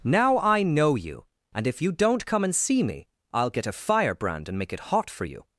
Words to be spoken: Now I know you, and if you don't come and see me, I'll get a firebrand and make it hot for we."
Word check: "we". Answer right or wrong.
wrong